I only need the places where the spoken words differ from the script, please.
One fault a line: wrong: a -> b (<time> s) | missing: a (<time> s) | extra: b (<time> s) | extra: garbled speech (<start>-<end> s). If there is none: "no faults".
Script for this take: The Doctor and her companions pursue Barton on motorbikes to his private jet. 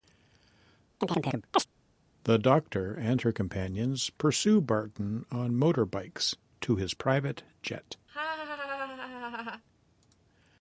no faults